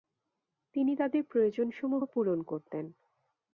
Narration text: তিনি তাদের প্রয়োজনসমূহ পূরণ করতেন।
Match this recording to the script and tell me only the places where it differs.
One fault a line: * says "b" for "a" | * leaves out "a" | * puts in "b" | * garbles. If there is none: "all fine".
all fine